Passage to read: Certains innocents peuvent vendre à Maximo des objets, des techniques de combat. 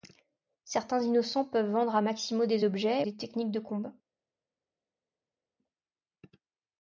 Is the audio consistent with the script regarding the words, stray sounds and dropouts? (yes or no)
yes